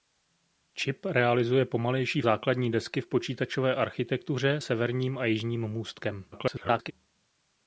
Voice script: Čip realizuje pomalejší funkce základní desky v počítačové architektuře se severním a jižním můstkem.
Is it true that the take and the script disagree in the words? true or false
true